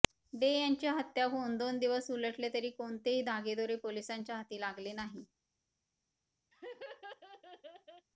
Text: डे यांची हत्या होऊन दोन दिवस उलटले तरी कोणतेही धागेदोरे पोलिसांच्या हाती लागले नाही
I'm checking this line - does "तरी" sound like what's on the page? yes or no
yes